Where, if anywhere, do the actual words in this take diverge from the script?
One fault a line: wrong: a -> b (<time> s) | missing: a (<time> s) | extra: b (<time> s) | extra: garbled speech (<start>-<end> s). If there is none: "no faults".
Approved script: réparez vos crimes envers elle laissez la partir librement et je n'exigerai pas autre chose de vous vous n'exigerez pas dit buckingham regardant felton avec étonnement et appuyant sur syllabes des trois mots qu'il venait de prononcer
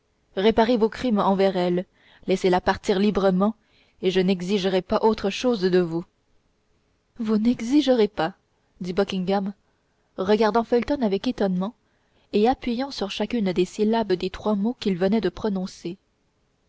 extra: chacune des (13.1 s)